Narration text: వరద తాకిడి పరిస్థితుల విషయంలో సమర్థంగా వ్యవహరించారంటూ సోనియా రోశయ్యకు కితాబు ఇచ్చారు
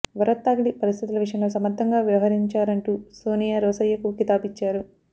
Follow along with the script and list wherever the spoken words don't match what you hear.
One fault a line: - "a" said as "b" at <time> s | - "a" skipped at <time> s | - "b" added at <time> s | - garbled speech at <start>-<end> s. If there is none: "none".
none